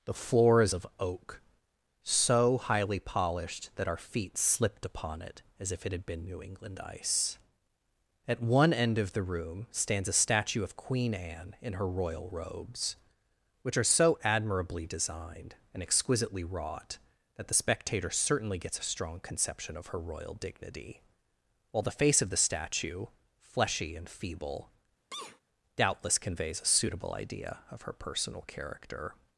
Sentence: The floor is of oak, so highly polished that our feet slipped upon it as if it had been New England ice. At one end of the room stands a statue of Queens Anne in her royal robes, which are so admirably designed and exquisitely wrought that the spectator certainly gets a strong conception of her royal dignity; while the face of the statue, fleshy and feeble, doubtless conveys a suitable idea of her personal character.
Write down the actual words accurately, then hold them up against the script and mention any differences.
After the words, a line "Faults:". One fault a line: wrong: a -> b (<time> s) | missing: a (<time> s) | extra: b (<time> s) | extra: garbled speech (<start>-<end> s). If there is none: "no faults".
The floor is of oak, so highly polished that our feet slipped upon it as if it had been New England ice. At one end of the room stands a statue of Queen Anne in her royal robes, which are so admirably designed and exquisitely wrought that the spectator certainly gets a strong conception of her royal dignity; while the face of the statue, fleshy and feeble, doubtless conveys a suitable idea of her personal character.
Faults:
wrong: Queens -> Queen (10.8 s)